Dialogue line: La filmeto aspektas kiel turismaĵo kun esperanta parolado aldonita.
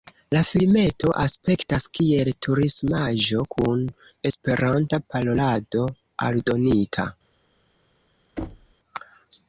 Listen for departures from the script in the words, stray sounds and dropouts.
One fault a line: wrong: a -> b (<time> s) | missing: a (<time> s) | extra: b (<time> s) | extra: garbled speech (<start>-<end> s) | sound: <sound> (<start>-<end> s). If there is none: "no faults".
sound: thud (8.4-8.7 s)